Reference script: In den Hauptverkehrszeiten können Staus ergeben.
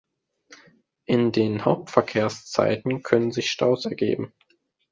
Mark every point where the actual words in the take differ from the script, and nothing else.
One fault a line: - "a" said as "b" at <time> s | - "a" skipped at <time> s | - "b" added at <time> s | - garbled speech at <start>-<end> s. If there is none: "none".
- "sich" added at 3.3 s